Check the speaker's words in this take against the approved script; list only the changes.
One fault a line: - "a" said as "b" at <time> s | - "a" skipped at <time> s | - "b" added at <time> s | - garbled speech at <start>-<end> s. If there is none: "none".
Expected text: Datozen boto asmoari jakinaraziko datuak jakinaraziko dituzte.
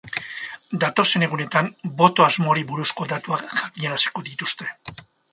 - "egunetan" added at 1.3 s
- "jakinaraziko" said as "buruzko" at 2.7 s